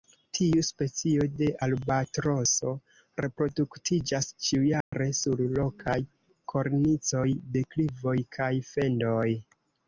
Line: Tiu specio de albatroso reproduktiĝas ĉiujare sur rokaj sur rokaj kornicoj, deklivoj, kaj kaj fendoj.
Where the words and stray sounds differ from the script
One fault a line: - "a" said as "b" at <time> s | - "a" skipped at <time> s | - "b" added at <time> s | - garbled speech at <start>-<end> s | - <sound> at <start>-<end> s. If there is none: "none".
- dropout at 4.8-4.9 s
- "sur rokaj" skipped at 6.0 s
- "kaj" skipped at 8.5 s